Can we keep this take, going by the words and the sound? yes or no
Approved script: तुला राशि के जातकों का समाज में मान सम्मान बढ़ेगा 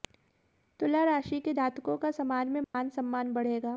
no